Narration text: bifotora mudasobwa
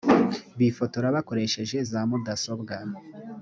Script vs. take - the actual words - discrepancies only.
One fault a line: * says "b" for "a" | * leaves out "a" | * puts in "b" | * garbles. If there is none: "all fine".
* puts in "bakoresheje za"